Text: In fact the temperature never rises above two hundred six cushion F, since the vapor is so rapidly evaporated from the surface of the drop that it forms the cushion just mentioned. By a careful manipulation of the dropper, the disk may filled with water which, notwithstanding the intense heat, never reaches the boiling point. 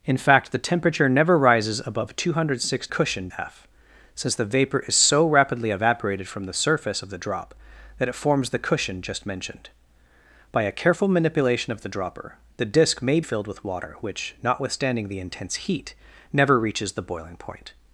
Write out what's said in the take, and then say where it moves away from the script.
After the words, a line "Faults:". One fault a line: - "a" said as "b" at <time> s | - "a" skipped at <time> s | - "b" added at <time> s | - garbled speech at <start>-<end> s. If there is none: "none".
In fact the temperature never rises above two hundred six cushion F, since the vapor is so rapidly evaporated from the surface of the drop that it forms the cushion just mentioned. By a careful manipulation of the dropper, the disk may filled with water which, notwithstanding the intense heat, never reaches the boiling point.
Faults:
none